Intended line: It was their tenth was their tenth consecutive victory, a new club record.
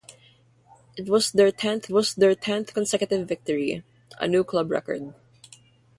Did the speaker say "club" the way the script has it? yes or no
yes